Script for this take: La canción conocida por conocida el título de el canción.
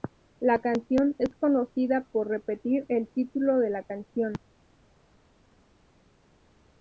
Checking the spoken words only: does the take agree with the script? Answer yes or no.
no